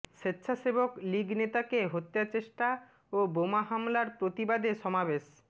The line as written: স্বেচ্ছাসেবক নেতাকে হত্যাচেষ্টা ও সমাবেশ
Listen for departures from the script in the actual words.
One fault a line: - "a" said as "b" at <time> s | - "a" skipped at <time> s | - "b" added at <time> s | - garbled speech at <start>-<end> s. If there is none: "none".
- "লীগ" added at 1.0 s
- "বোমা হামলার প্রতিবাদে" added at 3.3 s